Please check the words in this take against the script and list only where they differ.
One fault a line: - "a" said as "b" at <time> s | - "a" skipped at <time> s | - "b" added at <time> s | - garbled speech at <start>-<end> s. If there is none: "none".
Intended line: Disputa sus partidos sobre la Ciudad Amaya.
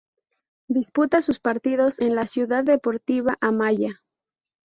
- "sobre" said as "en" at 2.0 s
- "Deportiva" added at 2.6 s